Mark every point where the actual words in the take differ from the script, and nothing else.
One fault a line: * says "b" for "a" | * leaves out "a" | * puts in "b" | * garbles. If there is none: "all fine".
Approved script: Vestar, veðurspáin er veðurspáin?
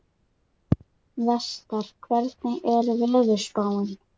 * says "hvernig" for "veðurspáin"